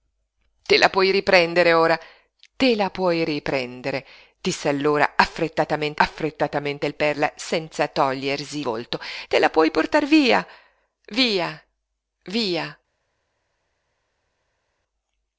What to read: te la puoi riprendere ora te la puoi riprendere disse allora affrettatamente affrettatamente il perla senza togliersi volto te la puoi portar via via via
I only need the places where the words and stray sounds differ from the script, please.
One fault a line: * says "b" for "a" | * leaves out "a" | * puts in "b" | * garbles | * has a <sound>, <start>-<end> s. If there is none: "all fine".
all fine